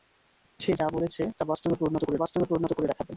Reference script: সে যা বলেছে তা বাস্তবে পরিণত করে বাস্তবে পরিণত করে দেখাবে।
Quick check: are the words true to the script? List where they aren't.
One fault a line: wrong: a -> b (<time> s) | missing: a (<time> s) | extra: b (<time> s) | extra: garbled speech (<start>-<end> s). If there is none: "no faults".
no faults